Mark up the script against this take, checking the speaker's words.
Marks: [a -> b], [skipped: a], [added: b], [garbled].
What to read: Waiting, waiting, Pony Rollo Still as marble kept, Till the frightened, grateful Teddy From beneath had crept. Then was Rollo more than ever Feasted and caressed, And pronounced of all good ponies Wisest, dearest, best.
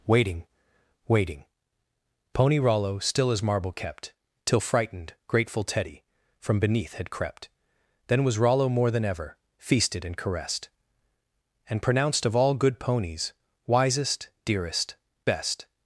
Waiting, waiting, Pony Rollo Still as marble kept, Till [skipped: the] frightened, grateful Teddy From beneath had crept. Then was Rollo more than ever Feasted and caressed, And pronounced of all good ponies Wisest, dearest, best.